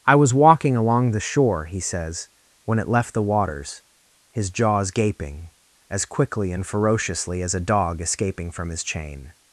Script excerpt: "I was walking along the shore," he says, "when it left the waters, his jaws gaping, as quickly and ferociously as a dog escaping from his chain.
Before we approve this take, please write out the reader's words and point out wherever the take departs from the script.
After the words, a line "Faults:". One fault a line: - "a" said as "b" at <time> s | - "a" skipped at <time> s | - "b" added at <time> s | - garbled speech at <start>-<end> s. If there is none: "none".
"I was walking along the shore," he says, "when it left the waters, his jaws gaping, as quickly and ferociously as a dog escaping from his chain.
Faults:
none